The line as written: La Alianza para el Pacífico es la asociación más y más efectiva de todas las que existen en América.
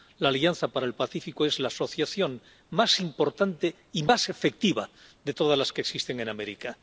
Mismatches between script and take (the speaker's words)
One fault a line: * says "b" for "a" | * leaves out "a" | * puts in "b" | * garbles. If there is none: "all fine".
* puts in "importante"